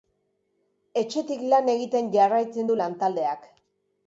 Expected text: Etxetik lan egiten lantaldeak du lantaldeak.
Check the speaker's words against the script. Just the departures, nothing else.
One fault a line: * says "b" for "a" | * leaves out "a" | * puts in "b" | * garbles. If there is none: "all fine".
* says "jarraitzen" for "lantaldeak"